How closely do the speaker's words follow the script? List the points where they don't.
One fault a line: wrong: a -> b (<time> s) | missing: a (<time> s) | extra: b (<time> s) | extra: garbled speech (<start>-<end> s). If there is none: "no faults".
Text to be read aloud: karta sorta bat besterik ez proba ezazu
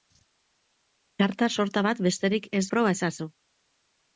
no faults